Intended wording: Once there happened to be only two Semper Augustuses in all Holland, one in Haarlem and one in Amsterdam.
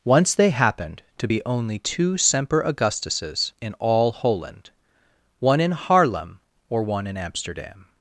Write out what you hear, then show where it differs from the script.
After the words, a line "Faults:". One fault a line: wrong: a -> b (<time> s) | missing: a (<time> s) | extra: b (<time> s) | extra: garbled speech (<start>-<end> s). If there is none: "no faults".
Once they happened to be only two Semper Augustuses in all Holland, one in Haarlem or one in Amsterdam.
Faults:
wrong: there -> they (0.3 s)
wrong: and -> or (6.7 s)